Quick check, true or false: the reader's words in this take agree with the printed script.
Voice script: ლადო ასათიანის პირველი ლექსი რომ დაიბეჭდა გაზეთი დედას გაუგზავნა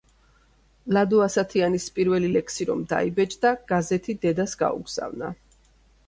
true